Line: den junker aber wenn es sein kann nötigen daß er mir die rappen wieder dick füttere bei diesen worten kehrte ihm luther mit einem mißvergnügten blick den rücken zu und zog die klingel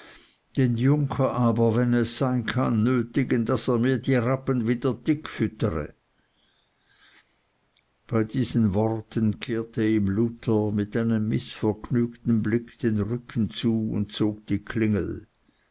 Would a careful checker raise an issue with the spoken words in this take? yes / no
no